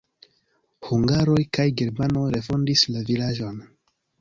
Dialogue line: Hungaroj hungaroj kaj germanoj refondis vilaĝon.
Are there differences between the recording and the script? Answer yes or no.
yes